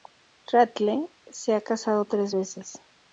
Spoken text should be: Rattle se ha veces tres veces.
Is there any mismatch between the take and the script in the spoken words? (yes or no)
yes